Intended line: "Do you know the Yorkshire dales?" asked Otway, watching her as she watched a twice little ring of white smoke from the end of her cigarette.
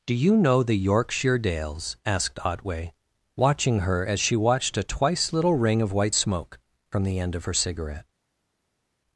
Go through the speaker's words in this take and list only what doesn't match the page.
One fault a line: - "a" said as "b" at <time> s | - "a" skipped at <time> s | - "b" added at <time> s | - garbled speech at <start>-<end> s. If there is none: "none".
none